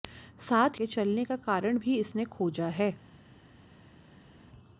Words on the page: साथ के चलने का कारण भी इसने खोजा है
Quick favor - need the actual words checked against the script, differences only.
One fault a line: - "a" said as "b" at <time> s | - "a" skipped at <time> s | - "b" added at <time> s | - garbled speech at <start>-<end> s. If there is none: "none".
none